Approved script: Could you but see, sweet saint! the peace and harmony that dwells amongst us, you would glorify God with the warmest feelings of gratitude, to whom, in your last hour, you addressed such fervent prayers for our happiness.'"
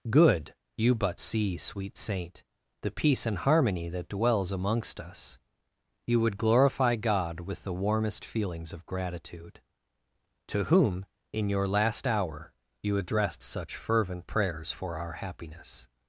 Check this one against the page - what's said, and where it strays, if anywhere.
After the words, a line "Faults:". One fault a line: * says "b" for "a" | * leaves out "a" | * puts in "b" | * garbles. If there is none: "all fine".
Good you but see, sweet saint! the peace and harmony that dwells amongst us, you would glorify God with the warmest feelings of gratitude, to whom, in your last hour, you addressed such fervent prayers for our happiness.'"
Faults:
* says "Good" for "Could"